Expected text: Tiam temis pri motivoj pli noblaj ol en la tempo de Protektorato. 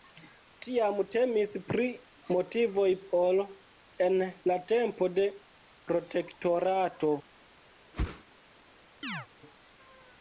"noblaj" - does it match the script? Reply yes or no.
no